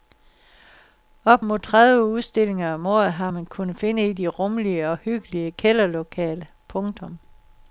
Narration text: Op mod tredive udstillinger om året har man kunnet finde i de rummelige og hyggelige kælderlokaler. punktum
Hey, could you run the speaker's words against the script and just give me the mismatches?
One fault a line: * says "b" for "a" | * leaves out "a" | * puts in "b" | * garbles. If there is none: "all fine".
all fine